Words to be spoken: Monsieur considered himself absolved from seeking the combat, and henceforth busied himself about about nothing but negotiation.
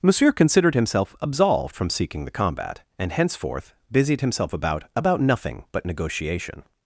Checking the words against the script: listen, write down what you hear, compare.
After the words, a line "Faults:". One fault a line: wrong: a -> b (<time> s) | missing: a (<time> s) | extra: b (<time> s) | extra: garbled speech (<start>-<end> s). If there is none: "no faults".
Monsieur considered himself absolved from seeking the combat, and henceforth busied himself about about nothing but negotiation.
Faults:
no faults